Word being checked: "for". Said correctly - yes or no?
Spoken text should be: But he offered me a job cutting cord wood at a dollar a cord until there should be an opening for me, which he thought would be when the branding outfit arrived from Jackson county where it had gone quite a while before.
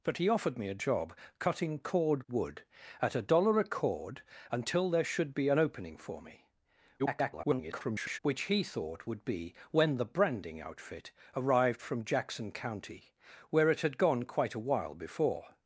yes